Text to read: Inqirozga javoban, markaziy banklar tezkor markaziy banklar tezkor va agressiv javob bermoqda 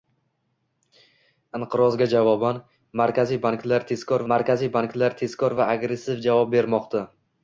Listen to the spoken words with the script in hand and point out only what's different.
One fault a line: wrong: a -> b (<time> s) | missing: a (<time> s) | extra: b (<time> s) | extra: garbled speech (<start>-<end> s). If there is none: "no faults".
no faults